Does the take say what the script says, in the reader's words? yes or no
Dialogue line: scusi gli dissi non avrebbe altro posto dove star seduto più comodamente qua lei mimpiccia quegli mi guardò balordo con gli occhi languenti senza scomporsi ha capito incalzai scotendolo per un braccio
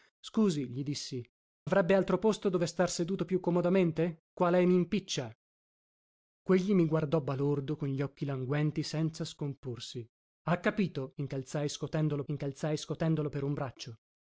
no